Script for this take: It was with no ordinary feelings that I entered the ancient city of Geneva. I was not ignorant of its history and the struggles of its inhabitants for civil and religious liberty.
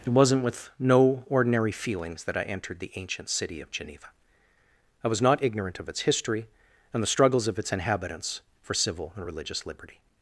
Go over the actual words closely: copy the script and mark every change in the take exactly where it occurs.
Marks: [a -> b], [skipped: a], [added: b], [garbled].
It [was -> wasn't] with no ordinary feelings that I entered the ancient city of Geneva. I was not ignorant of its history and the struggles of its inhabitants for civil and religious liberty.